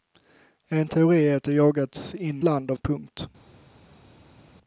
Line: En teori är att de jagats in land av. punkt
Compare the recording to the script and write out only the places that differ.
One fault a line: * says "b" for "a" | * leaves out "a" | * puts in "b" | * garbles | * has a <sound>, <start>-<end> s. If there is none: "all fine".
all fine